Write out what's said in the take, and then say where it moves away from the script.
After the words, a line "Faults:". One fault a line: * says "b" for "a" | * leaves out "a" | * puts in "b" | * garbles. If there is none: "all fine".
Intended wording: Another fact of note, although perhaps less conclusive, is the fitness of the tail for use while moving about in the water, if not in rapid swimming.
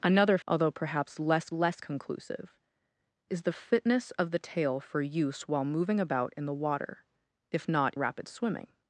Another although perhaps less less conclusive, is the fitness of the tail for use while moving about in the water, if not rapid swimming.
Faults:
* leaves out "fact of note"
* puts in "less"
* leaves out "in"